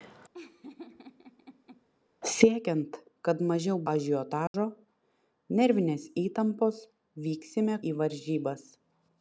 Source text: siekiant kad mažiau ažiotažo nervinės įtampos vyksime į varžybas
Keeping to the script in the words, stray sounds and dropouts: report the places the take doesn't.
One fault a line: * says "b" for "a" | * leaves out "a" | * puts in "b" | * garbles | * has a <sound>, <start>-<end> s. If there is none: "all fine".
* has a laugh, 0.3-1.9 s
* has a dropout, 4.5-4.5 s